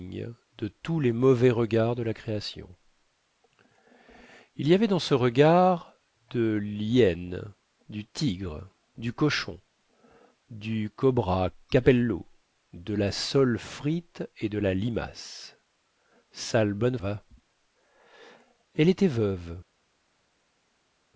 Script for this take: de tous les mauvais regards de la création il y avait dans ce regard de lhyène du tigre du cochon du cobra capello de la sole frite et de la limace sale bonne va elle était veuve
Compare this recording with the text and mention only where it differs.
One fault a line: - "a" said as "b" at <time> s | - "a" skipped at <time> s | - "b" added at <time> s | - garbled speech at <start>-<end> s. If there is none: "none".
none